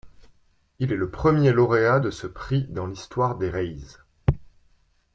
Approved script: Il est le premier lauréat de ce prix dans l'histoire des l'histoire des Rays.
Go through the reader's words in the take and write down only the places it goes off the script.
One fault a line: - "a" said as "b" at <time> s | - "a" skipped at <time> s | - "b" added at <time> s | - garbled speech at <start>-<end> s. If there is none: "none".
- "l'histoire des" skipped at 3.5 s